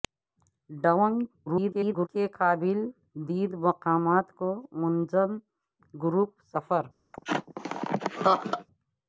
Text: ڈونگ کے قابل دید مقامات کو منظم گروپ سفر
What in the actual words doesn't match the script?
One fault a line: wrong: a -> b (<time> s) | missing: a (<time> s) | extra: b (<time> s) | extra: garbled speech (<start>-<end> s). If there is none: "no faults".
extra: garbled speech (1.5-2.1 s)